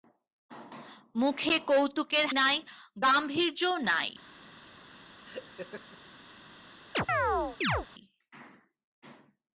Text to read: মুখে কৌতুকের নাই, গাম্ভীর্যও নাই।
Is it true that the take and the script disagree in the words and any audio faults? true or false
true